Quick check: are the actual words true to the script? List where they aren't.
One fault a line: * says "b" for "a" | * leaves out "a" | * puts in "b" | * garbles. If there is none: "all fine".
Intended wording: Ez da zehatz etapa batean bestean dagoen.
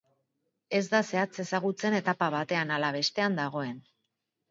* puts in "ezagutzen"
* puts in "ala"